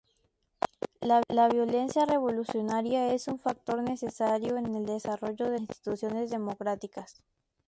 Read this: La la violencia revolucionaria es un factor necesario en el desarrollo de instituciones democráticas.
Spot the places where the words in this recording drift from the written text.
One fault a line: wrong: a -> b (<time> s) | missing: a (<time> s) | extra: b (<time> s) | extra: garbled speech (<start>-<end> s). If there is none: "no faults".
no faults